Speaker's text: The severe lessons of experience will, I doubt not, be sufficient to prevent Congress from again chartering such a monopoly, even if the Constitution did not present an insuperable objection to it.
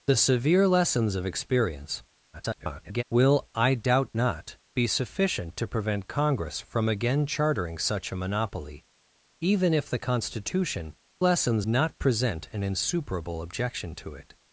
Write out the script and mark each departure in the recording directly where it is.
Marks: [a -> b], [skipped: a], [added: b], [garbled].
The severe lessons of experience [garbled] will, I doubt not, be sufficient to prevent Congress from again chartering such a monopoly, even if the Constitution [did -> lessons] not present an insuperable objection to it.